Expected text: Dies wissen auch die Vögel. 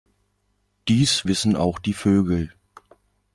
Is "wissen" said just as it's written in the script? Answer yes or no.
yes